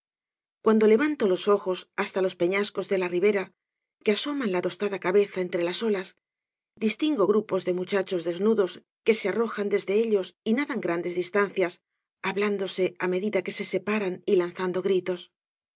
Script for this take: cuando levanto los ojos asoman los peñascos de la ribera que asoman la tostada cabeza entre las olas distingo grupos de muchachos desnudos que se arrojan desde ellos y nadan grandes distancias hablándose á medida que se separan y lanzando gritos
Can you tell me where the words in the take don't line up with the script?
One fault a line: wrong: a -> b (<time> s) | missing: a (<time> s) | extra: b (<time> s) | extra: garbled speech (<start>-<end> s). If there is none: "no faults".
wrong: asoman -> hasta (1.9 s)